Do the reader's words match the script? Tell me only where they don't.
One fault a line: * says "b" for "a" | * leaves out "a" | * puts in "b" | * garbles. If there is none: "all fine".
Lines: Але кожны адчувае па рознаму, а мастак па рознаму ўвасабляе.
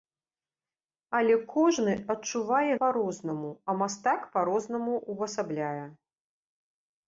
all fine